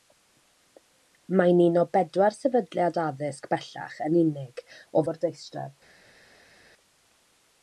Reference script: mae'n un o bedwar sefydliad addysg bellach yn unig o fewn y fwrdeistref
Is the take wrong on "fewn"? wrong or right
wrong